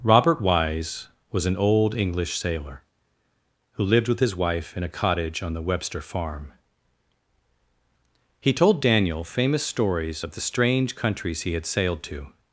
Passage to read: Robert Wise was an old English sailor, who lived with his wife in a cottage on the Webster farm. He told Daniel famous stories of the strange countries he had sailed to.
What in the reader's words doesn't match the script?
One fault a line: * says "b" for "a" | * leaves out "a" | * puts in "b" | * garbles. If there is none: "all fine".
all fine